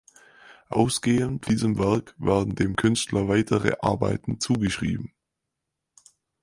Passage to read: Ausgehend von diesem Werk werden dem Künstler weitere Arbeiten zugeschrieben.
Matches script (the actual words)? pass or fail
fail